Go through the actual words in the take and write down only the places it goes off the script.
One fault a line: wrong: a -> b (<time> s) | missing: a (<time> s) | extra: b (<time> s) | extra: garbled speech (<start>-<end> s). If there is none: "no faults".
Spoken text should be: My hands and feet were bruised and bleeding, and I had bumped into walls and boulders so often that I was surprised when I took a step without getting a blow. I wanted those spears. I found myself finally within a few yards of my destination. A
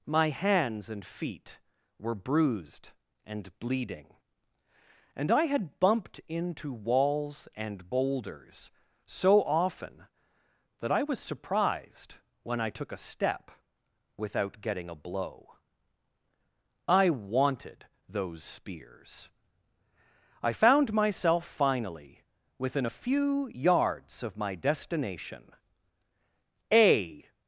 no faults